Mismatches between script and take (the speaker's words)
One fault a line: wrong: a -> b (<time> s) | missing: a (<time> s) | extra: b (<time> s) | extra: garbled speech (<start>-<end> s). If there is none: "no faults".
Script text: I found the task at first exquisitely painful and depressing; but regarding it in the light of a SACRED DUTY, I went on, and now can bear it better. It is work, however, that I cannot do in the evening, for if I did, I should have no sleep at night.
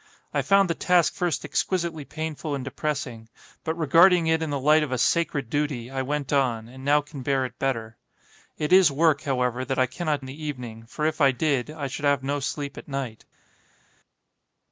missing: at (1.1 s)
missing: do (10.3 s)